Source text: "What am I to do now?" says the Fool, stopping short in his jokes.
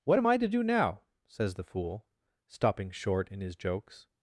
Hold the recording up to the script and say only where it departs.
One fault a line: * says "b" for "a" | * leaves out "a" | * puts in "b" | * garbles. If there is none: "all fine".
all fine